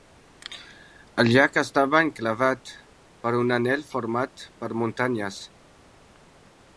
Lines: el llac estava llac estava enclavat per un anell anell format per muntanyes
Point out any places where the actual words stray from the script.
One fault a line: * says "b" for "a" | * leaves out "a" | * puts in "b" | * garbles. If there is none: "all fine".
* leaves out "llac estava"
* leaves out "anell"